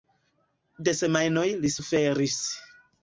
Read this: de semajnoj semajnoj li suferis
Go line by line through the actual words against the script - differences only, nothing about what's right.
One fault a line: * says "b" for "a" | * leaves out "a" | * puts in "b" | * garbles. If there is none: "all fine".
* leaves out "semajnoj"